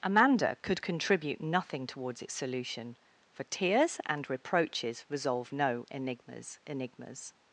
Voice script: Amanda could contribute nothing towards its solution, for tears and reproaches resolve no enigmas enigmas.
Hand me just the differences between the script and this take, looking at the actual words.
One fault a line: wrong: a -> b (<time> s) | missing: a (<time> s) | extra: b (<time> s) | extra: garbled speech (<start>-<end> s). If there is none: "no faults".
no faults